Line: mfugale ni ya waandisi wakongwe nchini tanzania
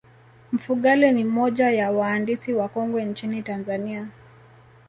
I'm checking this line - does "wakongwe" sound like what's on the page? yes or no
yes